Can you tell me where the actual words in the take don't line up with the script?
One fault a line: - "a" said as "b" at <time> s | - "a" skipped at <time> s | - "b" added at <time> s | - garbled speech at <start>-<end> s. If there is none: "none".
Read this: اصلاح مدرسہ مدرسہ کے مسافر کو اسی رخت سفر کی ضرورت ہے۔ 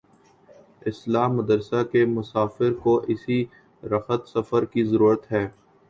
- "مدرسہ" skipped at 1.8 s